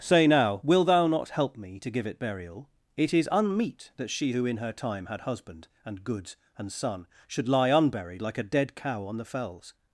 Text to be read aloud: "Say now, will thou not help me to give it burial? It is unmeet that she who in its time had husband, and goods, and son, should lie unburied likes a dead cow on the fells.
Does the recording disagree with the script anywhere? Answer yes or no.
yes